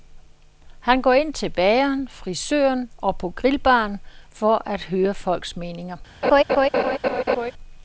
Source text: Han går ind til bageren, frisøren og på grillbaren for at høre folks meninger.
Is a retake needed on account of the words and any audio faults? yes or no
yes